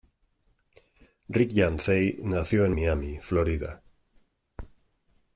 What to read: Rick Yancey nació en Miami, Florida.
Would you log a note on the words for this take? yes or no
no